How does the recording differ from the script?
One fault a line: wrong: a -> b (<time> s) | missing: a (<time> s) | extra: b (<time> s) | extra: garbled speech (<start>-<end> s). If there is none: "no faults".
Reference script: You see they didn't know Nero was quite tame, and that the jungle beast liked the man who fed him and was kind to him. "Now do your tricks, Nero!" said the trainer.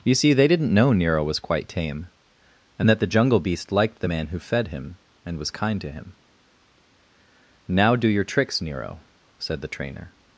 no faults